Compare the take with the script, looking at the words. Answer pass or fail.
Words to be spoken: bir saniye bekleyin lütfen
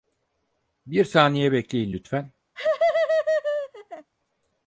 pass